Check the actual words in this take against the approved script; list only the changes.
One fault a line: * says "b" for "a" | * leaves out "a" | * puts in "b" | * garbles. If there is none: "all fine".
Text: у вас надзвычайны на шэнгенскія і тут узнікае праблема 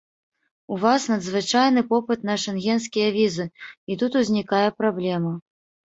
* puts in "попыт"
* puts in "візы"